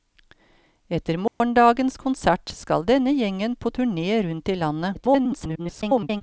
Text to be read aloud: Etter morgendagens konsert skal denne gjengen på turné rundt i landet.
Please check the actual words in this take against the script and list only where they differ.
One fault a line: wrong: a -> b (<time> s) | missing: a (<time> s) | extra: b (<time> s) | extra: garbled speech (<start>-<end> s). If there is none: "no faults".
extra: garbled speech (4.9-6.2 s)